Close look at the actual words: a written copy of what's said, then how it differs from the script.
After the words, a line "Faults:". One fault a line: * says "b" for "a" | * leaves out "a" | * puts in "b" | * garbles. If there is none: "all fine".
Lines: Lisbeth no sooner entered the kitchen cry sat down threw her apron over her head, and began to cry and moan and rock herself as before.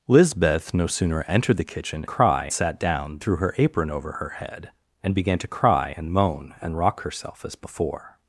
Lisbeth no sooner entered the kitchen cry sat down threw her apron over her head, and began to cry and moan and rock herself as before.
Faults:
all fine